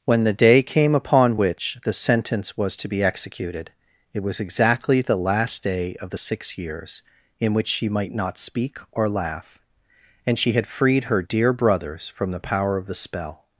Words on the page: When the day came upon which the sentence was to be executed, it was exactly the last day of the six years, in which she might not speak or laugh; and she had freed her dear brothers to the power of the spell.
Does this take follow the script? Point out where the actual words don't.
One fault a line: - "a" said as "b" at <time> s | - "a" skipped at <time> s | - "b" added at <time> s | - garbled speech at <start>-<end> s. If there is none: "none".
- "to" said as "from" at 12.1 s